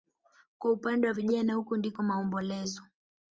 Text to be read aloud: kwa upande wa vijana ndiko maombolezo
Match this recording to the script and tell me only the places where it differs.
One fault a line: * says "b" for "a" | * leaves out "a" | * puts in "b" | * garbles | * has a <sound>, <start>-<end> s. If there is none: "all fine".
* puts in "huku"